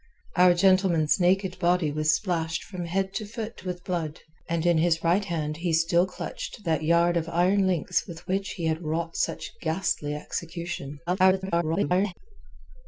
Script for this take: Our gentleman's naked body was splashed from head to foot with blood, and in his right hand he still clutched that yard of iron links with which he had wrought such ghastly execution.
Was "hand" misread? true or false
false